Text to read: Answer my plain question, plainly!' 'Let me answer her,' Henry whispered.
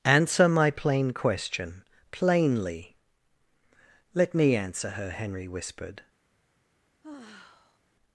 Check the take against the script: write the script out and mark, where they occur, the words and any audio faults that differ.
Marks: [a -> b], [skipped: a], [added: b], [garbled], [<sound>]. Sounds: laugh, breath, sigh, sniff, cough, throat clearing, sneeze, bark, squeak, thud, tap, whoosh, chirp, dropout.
Answer my plain question, plainly!' 'Let me answer her,' Henry whispered. [sigh]